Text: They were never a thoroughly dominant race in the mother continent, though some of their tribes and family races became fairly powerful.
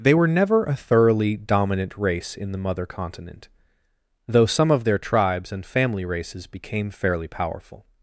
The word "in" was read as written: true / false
true